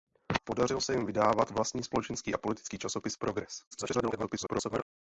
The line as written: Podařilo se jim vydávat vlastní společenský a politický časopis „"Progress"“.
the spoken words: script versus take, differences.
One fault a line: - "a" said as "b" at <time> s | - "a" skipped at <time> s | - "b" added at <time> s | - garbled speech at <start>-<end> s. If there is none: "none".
- garbled speech at 3.7-4.8 s